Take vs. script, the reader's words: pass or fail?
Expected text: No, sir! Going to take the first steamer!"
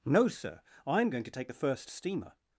fail